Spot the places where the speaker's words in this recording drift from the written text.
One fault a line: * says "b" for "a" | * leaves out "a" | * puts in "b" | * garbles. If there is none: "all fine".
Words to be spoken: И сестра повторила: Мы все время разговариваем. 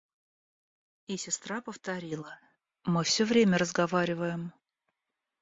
all fine